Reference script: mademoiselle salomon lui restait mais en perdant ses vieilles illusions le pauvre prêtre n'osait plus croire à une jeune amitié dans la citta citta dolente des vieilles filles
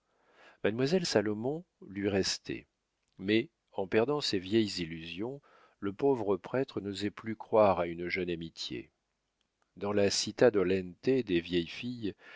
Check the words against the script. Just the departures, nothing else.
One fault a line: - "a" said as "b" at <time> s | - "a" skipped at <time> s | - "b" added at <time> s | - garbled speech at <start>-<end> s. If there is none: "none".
- "citta" skipped at 10.5 s